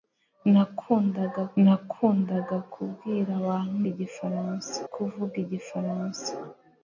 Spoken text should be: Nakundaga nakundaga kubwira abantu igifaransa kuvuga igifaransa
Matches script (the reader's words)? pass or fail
pass